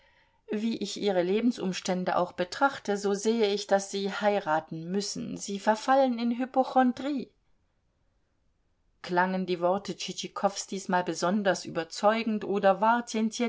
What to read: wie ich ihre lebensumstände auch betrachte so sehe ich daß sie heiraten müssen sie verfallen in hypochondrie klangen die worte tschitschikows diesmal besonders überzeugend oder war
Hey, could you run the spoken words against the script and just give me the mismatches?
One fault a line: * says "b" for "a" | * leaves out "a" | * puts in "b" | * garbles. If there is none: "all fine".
all fine